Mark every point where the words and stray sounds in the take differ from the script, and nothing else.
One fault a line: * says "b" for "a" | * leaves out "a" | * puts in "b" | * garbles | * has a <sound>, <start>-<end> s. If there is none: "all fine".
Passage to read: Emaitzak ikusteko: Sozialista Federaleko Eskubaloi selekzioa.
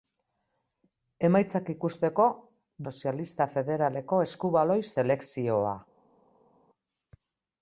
all fine